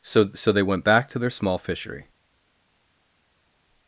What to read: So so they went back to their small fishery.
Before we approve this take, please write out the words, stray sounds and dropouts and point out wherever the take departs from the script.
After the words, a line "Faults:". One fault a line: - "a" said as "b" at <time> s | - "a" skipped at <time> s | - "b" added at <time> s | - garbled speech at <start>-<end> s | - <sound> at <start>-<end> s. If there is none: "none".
So so they went back to their small fishery.
Faults:
none